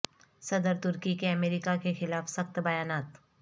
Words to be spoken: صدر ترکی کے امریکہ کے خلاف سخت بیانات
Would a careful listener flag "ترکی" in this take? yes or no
no